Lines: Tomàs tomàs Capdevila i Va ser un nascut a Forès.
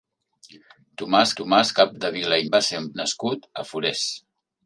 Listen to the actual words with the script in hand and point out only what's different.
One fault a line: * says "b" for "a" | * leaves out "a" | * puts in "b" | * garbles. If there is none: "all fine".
all fine